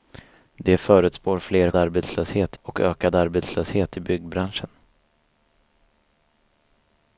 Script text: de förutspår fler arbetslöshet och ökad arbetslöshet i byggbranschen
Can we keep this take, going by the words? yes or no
yes